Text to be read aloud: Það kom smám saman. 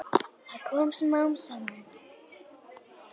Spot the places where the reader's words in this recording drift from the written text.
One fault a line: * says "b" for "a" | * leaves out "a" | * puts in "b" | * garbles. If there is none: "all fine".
all fine